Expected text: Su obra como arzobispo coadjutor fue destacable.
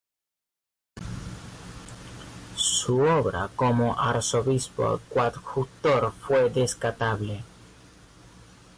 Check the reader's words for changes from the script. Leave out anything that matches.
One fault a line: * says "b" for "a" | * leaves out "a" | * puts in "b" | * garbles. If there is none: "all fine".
all fine